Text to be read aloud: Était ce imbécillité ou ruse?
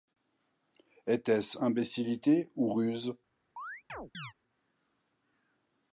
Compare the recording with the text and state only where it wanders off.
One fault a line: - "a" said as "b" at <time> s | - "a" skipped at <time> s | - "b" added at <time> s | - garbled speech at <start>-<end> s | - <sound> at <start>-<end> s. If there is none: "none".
- chirp at 3.6-4.3 s